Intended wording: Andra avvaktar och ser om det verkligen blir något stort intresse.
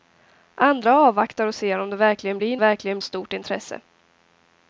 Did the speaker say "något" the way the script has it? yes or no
no